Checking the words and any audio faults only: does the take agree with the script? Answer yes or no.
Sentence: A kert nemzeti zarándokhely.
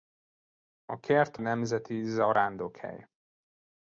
yes